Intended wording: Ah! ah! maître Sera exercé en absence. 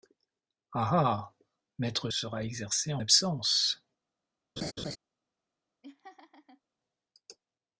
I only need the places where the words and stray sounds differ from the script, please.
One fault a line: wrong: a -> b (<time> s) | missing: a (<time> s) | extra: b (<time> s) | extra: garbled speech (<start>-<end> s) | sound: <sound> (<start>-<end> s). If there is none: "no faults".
sound: laugh (4.6-5.0 s)
sound: laugh (5.8-6.6 s)